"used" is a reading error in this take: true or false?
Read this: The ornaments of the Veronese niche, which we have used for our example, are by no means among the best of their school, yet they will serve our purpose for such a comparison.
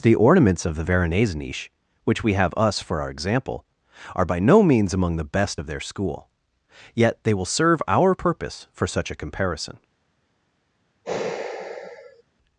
true